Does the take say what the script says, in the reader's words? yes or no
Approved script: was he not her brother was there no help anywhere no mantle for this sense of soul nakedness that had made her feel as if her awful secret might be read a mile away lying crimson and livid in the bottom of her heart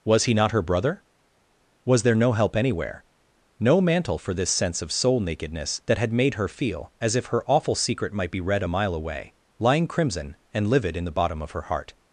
yes